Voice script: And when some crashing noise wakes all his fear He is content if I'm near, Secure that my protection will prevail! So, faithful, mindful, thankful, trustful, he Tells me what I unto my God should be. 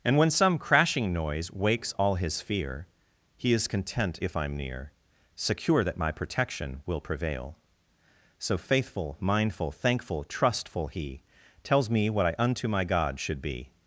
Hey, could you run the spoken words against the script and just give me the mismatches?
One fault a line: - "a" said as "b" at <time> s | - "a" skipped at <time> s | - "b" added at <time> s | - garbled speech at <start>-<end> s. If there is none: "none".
none